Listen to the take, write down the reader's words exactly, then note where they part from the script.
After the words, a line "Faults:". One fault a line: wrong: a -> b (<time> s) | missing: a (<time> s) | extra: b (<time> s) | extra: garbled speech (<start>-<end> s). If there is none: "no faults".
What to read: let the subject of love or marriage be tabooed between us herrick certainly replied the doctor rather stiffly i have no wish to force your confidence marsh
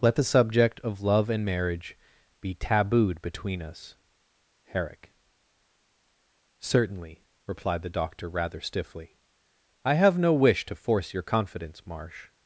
let the subject of love and marriage be tabooed between us herrick certainly replied the doctor rather stiffly i have no wish to force your confidence marsh
Faults:
wrong: or -> and (1.3 s)